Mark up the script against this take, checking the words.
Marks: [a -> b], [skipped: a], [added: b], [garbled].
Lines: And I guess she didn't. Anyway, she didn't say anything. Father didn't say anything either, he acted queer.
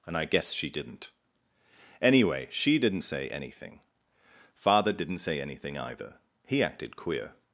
And I guess she didn't. Anyway, she didn't say anything. Father didn't say anything either, he acted queer.